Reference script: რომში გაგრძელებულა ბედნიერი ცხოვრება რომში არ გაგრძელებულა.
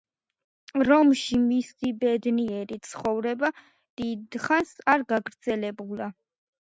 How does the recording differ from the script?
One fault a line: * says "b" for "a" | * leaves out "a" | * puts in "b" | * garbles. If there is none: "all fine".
* says "მისი" for "გაგრძელებულა"
* says "დიდხანს" for "რომში"